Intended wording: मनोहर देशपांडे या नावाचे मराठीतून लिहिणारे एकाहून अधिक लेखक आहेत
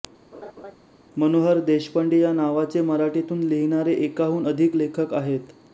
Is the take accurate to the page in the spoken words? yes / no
yes